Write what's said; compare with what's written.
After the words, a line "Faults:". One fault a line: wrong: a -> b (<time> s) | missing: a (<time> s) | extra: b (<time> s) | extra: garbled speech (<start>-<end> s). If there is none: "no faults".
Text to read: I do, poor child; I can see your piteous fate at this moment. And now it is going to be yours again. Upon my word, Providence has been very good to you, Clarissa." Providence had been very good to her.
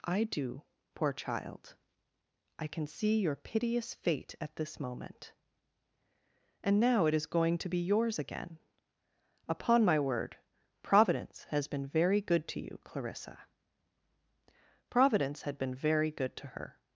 I do, poor child; I can see your piteous fate at this moment. And now it is going to be yours again. Upon my word, Providence has been very good to you, Clarissa." Providence had been very good to her.
Faults:
no faults